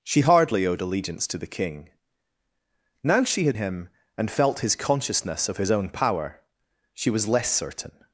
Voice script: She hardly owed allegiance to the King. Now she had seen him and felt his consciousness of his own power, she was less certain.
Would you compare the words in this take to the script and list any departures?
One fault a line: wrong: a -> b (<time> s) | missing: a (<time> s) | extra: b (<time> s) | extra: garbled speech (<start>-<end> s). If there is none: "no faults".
missing: seen (3.6 s)